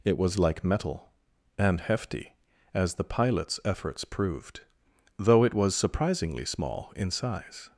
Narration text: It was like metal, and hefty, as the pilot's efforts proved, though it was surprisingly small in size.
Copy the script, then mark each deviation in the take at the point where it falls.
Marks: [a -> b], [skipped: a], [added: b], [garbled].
It was like metal, and hefty, as the pilot's efforts proved, though it was surprisingly small in size.